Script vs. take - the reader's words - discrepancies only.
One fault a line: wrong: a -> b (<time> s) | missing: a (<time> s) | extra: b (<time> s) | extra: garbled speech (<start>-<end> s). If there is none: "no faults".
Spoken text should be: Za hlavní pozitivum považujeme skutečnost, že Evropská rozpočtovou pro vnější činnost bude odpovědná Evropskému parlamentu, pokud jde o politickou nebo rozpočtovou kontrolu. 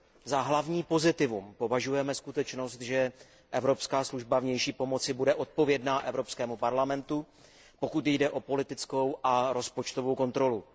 wrong: rozpočtovou -> služba (4.0 s)
wrong: nebo -> a (9.2 s)